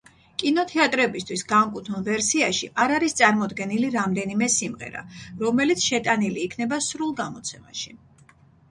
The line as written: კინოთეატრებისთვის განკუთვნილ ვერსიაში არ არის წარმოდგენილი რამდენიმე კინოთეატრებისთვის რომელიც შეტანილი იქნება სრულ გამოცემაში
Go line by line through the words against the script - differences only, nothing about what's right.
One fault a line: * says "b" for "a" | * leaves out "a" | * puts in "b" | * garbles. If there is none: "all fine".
* says "სიმღერა" for "კინოთეატრებისთვის"